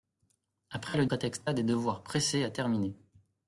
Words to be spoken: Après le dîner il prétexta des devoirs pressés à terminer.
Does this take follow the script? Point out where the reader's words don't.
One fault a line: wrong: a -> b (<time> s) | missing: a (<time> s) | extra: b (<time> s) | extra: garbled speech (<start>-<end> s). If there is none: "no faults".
missing: dîner il (1.1 s)